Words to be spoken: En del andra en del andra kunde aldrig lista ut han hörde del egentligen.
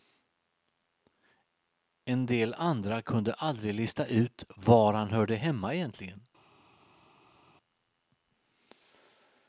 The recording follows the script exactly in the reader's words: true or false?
false